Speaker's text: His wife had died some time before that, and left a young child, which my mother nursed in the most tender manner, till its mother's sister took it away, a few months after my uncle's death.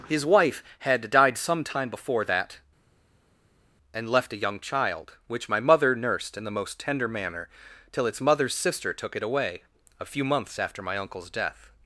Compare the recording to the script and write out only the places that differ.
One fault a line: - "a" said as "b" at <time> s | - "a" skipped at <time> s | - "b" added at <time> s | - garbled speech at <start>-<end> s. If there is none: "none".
none